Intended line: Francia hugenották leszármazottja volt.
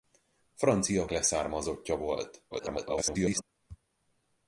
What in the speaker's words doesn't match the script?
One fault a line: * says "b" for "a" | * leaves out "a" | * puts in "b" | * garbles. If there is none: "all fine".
* leaves out "hugenották"
* garbles